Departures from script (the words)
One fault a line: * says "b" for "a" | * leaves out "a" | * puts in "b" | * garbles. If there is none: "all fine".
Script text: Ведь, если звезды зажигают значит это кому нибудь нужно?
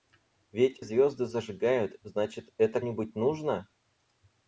* leaves out "если"
* leaves out "кому"